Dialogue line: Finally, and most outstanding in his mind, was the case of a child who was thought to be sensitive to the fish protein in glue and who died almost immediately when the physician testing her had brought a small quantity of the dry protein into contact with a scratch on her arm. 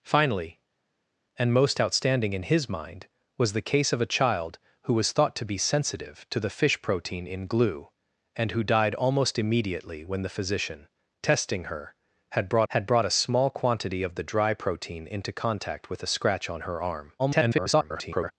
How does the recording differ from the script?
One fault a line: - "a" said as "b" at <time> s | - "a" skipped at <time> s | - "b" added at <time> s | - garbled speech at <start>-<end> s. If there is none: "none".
- "had brought" added at 12.7 s
- garbled speech at 17.2-18.3 s